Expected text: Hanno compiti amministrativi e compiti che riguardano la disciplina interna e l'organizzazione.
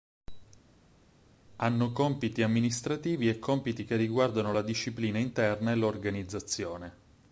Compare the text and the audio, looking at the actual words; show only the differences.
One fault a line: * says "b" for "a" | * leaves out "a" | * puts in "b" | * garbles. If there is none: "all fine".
all fine